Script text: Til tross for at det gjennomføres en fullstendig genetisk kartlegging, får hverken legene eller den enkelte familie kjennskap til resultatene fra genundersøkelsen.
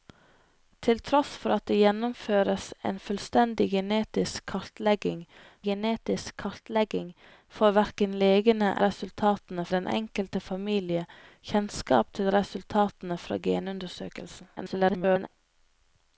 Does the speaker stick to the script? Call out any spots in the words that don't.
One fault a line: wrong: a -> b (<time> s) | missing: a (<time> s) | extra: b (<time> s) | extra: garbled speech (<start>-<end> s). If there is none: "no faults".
extra: genetisk kartlegging (5.7 s)
wrong: eller -> resultatene (8.9 s)
extra: garbled speech (14.6-15.3 s)